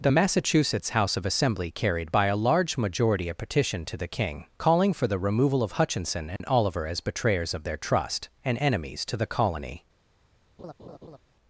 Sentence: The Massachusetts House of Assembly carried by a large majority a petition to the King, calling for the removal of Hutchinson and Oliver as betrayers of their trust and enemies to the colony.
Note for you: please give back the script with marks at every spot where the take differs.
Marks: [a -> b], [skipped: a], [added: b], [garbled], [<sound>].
The Massachusetts House of Assembly carried by a large majority a petition to the King, calling for the removal of Hutchinson and [dropout] Oliver as betrayers of their trust and enemies to the colony. [laugh]